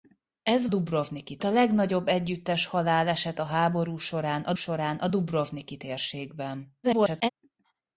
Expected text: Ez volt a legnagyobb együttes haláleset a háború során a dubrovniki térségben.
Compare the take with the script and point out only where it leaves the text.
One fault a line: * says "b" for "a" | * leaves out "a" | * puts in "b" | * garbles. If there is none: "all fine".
* says "dubrovniki" for "volt"
* puts in "során a"
* garbles